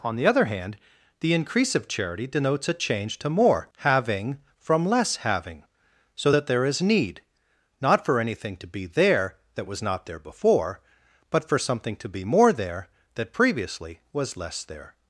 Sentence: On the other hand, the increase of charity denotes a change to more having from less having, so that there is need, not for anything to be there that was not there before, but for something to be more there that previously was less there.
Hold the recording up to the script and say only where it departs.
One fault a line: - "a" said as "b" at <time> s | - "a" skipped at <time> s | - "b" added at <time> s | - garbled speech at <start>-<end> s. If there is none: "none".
none